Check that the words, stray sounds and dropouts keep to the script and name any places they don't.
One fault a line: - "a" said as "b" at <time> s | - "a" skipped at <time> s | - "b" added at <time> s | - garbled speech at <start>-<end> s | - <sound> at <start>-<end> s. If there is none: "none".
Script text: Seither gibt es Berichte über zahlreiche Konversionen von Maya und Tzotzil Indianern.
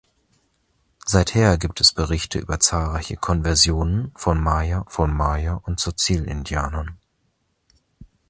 - "von Maya" added at 4.9 s